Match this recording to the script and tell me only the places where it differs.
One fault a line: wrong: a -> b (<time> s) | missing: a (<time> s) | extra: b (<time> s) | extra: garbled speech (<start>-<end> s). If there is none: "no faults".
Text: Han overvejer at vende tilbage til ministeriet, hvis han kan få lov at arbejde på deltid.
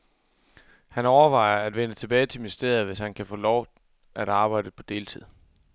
no faults